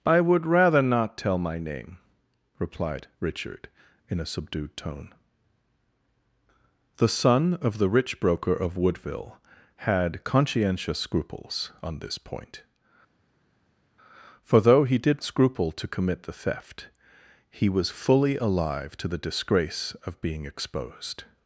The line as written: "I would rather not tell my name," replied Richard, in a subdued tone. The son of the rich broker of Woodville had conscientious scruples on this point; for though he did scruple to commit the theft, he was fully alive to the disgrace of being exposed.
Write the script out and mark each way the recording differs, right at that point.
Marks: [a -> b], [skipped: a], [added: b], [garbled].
"I would rather not tell my name," replied Richard, in a subdued tone. The son of the rich broker of Woodville had conscientious scruples on this point; for though he did scruple to commit the theft, he was fully alive to the disgrace of being exposed.